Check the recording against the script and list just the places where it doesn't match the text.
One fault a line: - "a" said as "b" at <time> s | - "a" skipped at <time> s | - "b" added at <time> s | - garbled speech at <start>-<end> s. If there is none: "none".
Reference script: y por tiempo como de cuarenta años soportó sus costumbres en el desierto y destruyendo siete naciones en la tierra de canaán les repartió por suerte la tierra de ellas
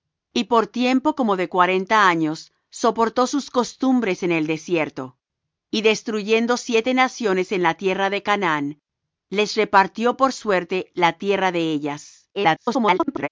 - garbled speech at 12.3-13.3 s